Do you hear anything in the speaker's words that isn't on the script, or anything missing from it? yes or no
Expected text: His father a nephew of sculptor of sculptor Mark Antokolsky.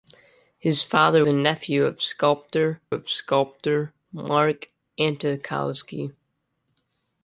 no